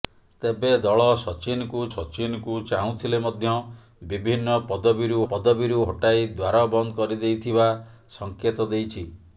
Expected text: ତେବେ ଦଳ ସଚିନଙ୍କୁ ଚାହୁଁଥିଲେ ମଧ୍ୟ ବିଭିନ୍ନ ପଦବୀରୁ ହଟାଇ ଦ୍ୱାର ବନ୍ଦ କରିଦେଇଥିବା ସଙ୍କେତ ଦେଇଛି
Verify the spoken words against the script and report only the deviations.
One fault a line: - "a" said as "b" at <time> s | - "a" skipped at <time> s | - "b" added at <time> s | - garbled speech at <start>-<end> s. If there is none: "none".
- "ସଚିନଙ୍କୁ" added at 1.9 s
- "ପଦବୀରୁ" added at 5.3 s